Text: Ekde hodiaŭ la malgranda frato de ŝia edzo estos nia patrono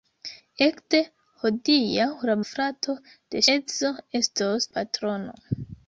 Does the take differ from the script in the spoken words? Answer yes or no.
yes